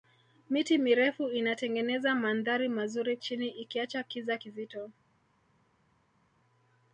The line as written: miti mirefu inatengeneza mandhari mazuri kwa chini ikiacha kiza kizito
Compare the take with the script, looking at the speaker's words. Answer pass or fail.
fail